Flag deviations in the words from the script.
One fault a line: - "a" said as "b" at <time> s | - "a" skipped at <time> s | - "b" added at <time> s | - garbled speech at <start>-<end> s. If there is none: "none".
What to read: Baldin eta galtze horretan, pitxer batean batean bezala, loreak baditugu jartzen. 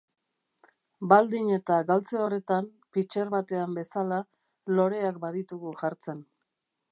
- "batean" skipped at 3.8 s